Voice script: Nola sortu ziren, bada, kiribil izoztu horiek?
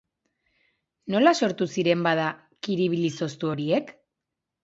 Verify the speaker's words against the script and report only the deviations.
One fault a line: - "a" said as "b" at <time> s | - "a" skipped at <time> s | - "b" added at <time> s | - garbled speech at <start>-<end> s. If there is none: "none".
none